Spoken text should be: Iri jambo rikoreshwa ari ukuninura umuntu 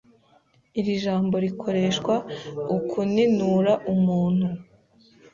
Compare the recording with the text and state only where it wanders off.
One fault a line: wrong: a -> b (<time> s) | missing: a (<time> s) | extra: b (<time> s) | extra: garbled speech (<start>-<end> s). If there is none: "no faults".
missing: ari (2.1 s)